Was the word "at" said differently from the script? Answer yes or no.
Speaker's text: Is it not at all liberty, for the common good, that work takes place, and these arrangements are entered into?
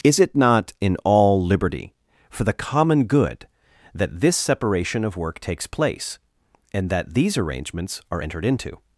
yes